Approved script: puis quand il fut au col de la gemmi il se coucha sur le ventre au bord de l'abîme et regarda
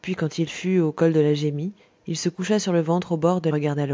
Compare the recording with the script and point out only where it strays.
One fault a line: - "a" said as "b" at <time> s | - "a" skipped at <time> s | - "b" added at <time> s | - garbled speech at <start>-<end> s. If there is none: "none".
- "l'abîme et" skipped at 3.5 s